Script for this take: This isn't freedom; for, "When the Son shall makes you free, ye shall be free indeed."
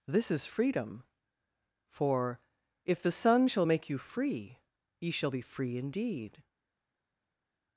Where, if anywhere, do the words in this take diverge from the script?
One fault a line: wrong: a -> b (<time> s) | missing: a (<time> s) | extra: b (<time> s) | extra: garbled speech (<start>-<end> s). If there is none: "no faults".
wrong: isn't -> is (0.3 s)
wrong: When -> If (2.9 s)
wrong: makes -> make (3.6 s)